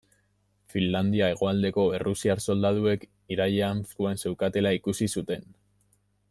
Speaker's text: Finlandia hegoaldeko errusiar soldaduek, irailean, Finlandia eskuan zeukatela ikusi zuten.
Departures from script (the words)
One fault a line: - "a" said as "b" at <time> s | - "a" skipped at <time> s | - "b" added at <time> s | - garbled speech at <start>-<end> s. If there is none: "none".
- "Finlandia" skipped at 3.9 s